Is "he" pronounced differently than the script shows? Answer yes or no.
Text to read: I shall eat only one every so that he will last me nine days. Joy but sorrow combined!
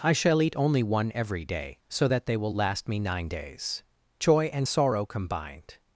yes